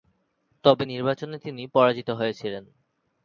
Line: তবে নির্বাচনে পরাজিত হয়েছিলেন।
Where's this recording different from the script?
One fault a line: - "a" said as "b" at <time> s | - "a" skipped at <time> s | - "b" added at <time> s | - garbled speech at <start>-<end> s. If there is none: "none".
- "তিনি" added at 1.4 s